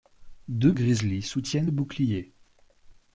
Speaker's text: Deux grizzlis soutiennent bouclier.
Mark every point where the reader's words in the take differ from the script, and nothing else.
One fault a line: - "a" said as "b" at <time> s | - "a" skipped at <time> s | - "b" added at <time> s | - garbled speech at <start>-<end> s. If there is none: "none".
none